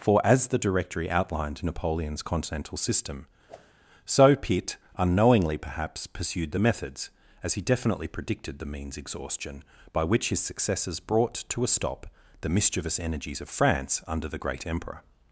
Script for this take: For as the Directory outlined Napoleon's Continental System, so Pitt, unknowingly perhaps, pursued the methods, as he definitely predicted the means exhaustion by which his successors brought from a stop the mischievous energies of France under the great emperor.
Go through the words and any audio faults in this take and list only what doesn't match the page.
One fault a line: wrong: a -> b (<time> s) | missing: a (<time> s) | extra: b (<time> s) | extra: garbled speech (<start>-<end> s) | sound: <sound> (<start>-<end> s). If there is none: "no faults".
sound: whoosh (3.5-3.7 s)
wrong: from -> to (11.5 s)